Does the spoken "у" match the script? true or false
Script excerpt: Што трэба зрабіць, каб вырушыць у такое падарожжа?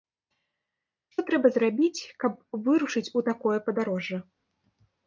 true